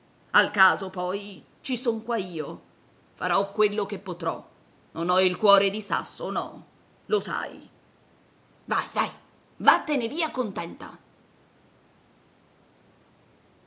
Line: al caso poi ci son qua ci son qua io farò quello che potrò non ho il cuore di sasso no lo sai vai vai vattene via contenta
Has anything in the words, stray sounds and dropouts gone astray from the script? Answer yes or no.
yes